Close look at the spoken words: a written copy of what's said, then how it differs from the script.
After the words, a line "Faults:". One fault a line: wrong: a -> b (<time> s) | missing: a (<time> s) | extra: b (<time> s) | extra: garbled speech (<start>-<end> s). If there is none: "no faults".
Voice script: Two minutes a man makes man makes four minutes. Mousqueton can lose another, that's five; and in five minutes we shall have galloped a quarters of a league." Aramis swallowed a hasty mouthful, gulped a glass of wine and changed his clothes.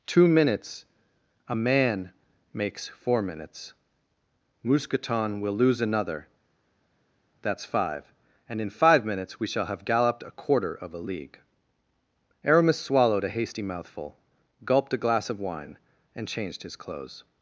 Two minutes a man makes four minutes. Mousqueton will lose another, that's five; and in five minutes we shall have galloped a quarter of a league." Aramis swallowed a hasty mouthful, gulped a glass of wine and changed his clothes.
Faults:
missing: man makes (2.9 s)
wrong: can -> will (5.4 s)
wrong: quarters -> quarter (10.3 s)